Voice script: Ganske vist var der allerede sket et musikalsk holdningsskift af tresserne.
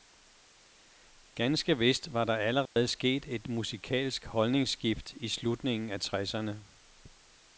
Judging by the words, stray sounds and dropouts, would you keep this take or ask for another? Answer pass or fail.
fail